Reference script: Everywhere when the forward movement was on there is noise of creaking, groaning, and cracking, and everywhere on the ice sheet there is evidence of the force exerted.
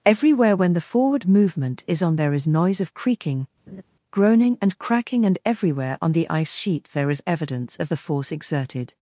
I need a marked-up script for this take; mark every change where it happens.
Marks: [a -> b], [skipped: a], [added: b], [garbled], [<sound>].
Everywhere when the forward movement [was -> is] on there is noise of creaking, [laugh] groaning, and cracking, and everywhere on the ice sheet there is evidence of the force exerted.